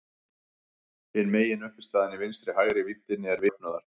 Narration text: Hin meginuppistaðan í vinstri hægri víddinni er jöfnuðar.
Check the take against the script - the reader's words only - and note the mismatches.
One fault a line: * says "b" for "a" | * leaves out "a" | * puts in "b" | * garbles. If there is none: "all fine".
all fine